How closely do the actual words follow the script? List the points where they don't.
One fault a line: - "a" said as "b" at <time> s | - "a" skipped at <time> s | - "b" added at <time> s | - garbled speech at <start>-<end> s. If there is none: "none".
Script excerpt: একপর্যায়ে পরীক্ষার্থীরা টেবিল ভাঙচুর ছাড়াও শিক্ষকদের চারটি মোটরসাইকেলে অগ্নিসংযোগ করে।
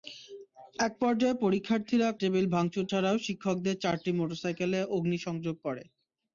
none